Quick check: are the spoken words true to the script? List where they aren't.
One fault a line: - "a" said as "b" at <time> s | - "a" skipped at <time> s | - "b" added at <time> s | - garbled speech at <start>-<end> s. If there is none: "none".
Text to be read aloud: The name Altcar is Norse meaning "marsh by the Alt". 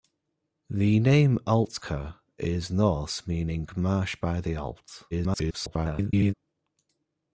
- garbled speech at 5.1-6.3 s